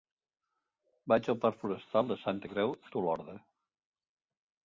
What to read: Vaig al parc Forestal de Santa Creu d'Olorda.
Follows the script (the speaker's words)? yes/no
yes